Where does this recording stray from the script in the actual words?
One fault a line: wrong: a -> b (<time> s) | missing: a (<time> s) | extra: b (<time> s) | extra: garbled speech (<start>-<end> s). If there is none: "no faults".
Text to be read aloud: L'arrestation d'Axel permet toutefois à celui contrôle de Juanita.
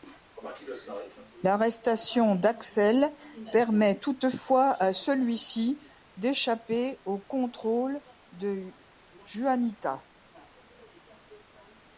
extra: ci d'échapper au (5.4 s)